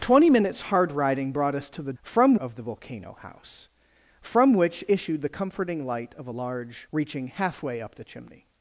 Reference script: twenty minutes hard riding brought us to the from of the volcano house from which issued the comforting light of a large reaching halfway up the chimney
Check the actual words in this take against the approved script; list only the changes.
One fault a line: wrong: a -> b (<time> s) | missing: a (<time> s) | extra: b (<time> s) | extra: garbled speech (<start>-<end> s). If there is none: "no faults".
no faults